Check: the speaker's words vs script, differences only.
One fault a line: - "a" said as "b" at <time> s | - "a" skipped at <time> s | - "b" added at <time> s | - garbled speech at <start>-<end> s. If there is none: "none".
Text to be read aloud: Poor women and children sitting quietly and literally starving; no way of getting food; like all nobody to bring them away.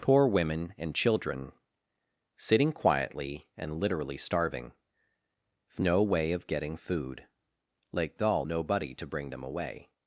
none